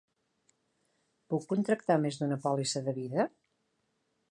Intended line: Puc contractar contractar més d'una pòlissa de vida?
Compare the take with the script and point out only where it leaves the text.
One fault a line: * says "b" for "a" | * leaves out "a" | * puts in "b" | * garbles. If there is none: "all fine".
* leaves out "contractar"